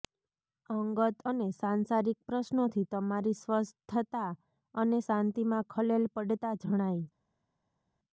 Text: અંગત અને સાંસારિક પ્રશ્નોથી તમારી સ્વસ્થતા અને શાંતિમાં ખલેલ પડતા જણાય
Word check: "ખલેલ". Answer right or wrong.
right